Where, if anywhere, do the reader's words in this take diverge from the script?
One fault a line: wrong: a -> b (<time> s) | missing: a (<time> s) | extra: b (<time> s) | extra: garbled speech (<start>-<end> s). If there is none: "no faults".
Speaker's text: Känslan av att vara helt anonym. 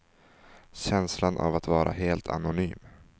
no faults